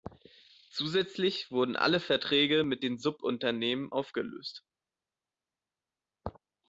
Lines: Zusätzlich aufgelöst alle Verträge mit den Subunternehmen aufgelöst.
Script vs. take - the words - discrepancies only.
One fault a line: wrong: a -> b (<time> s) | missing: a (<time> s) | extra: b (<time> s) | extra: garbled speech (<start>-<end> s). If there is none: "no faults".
wrong: aufgelöst -> wurden (1.5 s)